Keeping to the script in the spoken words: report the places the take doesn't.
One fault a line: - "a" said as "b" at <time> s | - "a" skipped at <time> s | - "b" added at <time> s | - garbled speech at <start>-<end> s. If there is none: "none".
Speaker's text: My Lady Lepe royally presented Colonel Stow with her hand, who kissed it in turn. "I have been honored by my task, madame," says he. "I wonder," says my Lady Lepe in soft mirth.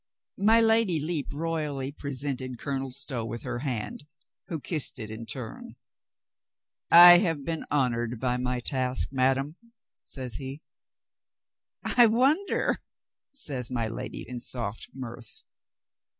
- "Lepe" skipped at 14.2 s